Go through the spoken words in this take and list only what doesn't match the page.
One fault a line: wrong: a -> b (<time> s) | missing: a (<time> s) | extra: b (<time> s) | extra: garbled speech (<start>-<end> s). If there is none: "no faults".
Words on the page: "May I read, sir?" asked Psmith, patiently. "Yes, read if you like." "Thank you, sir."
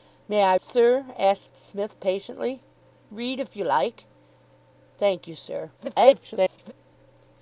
missing: read (0.6 s)
missing: Yes (2.6 s)
extra: garbled speech (5.8-6.7 s)